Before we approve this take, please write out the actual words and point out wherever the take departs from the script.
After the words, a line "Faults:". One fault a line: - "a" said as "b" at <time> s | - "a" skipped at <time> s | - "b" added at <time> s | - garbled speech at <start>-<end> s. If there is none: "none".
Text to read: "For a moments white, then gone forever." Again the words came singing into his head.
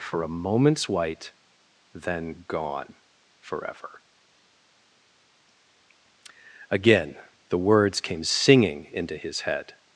"For a moments white, then gone forever." Again the words came singing into his head.
Faults:
none